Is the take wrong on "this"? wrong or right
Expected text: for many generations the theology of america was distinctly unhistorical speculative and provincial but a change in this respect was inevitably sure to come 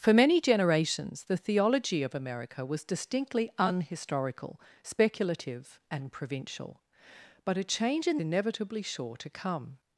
wrong